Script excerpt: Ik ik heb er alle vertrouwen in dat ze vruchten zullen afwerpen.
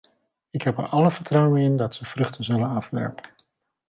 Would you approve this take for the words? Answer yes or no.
no